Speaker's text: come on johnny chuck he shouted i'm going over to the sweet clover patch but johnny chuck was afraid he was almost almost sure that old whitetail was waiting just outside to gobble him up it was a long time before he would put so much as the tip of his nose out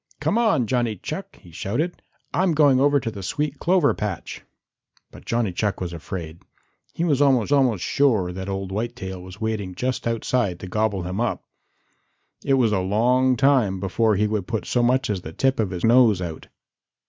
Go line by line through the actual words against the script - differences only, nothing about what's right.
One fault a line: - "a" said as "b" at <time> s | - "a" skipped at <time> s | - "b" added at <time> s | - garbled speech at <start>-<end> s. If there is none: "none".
none